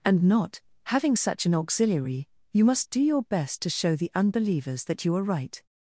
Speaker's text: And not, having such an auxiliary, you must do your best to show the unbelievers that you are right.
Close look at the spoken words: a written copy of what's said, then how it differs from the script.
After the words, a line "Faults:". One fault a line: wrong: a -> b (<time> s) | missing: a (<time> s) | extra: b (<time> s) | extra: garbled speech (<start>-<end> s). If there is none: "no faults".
And not, having such an auxiliary, you must do your best to show the unbelievers that you are right.
Faults:
no faults